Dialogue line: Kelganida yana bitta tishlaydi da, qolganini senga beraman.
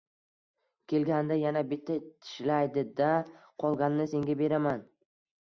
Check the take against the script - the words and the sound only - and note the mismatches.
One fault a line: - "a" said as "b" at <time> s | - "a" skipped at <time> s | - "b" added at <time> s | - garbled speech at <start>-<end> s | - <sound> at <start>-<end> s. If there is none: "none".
none